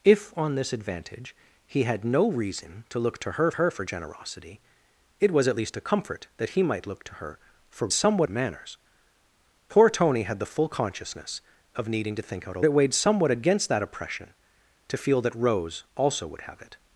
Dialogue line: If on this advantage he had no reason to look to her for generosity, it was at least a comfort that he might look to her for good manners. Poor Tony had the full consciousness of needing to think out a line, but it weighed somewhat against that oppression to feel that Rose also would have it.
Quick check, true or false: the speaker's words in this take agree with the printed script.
false